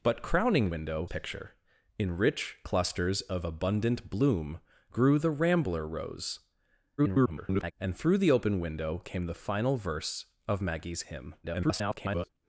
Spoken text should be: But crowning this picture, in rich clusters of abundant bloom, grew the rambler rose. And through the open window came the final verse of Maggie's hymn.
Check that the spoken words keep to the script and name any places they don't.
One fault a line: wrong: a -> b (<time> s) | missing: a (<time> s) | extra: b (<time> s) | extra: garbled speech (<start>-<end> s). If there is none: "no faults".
wrong: this -> window (0.7 s)
extra: garbled speech (7.0-7.7 s)
extra: garbled speech (11.4-12.3 s)